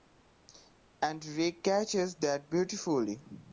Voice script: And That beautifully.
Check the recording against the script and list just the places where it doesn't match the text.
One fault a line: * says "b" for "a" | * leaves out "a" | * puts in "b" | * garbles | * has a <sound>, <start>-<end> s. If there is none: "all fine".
* puts in "Rick catches"